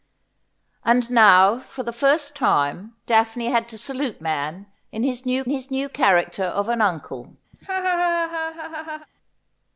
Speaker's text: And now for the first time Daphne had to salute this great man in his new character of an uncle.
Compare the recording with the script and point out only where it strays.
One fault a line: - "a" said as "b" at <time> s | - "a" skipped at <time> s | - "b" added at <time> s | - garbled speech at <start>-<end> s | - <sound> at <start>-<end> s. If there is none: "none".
- "this great man in" said as "man in his new" at 4.2 s
- laugh at 7.5-9.1 s